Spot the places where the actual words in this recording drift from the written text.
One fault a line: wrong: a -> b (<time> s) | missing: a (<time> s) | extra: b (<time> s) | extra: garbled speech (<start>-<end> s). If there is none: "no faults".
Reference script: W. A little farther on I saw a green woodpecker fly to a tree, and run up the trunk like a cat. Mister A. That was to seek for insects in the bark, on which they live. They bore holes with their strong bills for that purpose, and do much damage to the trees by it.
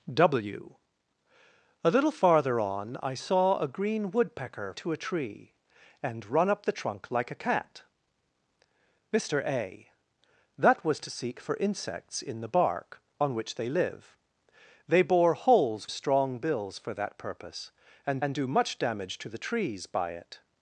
missing: fly (4.7 s)
missing: with their (15.9 s)
extra: and (18.2 s)